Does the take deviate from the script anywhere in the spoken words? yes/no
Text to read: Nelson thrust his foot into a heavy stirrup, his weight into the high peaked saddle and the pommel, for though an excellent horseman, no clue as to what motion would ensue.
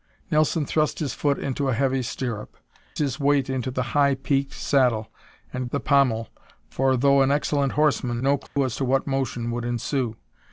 no